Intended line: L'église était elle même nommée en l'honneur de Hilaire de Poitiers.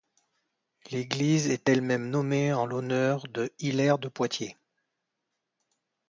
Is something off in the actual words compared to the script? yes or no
yes